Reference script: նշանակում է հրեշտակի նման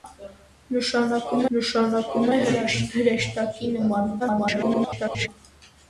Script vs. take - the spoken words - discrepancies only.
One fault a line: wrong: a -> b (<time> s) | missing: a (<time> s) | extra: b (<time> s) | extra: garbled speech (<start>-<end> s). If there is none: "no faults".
extra: նշանակում (1.6 s)
extra: garbled speech (4.2-5.3 s)